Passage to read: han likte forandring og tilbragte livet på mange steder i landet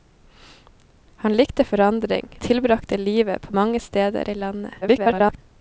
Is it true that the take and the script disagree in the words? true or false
true